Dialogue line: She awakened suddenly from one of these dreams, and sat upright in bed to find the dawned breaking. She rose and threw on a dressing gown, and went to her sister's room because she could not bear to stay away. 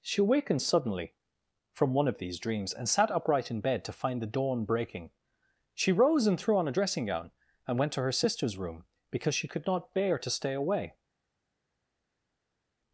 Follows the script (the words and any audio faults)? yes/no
no